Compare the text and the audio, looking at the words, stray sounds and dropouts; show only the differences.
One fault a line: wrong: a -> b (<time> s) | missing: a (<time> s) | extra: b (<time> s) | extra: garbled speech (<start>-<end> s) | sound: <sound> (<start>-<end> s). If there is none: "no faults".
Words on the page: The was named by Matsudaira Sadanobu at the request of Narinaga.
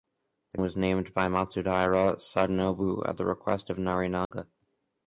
sound: dropout (4.2-4.3 s)